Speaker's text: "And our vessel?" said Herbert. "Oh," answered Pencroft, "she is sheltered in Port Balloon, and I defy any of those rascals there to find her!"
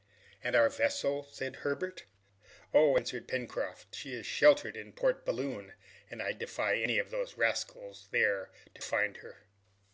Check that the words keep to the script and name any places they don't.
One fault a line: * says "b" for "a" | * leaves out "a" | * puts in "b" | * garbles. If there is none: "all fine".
all fine